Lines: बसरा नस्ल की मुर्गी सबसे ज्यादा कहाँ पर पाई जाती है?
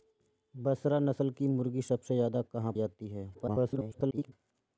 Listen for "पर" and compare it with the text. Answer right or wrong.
wrong